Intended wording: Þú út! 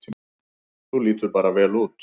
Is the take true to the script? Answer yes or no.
no